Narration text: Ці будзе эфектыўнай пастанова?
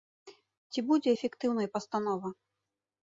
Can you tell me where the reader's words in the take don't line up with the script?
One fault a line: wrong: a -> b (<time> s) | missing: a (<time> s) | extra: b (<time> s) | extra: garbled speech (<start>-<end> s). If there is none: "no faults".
no faults